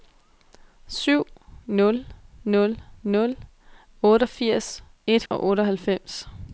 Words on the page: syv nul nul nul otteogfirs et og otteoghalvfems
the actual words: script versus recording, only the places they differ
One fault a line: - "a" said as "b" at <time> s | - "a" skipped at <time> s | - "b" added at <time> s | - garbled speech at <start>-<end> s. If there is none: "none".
none